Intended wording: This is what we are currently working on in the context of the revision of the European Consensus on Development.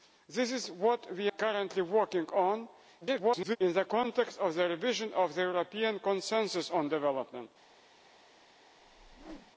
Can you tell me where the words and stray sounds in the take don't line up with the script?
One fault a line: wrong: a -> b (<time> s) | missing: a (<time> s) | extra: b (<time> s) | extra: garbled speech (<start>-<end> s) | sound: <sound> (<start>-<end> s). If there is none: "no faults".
missing: are (1.3 s)
extra: garbled speech (3.0-3.6 s)
sound: whoosh (8.8-9.5 s)